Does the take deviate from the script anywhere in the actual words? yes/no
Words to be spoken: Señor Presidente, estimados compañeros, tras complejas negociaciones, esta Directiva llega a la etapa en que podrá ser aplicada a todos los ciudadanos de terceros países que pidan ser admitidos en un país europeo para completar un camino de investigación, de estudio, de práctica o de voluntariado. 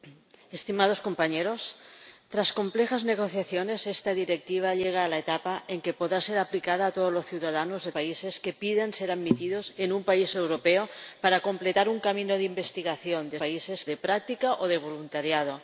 yes